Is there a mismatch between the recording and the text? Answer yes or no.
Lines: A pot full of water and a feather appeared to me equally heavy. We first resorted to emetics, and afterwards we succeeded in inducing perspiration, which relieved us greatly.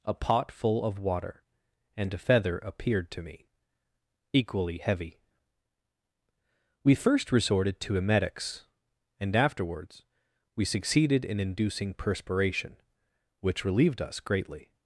no